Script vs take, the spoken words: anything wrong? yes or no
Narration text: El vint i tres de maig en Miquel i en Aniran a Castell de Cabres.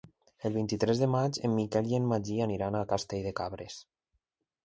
yes